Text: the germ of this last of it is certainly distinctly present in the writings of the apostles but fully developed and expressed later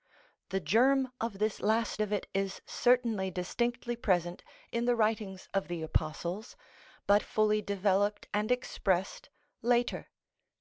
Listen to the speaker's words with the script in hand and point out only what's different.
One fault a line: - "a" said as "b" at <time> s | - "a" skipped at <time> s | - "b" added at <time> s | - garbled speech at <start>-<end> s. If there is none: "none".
none